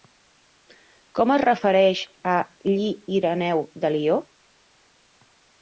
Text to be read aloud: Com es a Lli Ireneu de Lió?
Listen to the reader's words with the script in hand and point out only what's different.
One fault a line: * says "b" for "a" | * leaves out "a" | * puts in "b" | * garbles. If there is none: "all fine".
* puts in "refereix"